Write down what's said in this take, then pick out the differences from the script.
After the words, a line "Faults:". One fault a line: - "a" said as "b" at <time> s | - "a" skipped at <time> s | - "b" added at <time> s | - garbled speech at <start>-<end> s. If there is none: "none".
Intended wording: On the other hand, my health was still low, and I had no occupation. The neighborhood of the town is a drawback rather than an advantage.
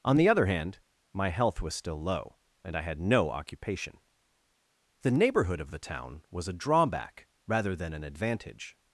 On the other hand, my health was still low, and I had no occupation. The neighborhood of the town was a drawback rather than an advantage.
Faults:
- "is" said as "was" at 6.3 s